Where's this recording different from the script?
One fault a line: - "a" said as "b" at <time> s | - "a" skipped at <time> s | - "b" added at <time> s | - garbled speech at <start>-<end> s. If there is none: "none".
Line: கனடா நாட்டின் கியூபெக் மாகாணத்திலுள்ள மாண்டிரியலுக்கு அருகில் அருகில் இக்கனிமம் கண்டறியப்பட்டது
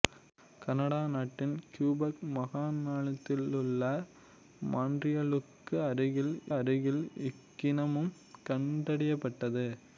none